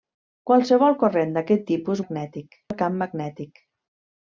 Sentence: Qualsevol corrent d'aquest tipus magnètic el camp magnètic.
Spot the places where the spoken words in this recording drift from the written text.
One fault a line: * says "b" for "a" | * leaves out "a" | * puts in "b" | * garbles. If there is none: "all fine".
all fine